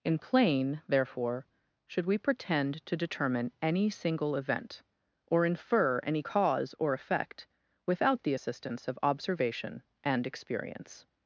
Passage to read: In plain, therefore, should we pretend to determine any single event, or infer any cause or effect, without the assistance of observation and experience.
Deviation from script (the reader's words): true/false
false